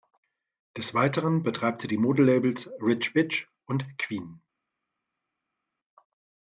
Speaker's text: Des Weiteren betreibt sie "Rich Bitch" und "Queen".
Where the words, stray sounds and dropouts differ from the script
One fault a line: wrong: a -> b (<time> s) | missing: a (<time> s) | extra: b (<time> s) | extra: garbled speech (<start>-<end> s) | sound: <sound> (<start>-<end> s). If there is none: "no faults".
extra: die Modelabels (1.9 s)